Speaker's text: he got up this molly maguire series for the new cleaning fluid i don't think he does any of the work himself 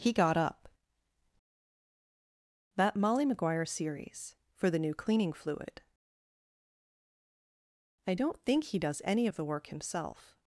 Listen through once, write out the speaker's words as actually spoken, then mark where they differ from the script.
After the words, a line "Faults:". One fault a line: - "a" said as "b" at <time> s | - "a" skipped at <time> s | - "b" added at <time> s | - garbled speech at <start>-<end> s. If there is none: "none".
he got up that molly maguire series for the new cleaning fluid i don't think he does any of the work himself
Faults:
- "this" said as "that" at 2.8 s